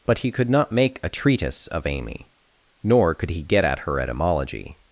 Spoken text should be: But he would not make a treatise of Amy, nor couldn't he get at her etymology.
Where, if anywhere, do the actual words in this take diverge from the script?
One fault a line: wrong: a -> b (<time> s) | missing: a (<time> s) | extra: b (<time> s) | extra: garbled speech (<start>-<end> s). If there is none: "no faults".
wrong: would -> could (0.3 s)
wrong: couldn't -> could (3.1 s)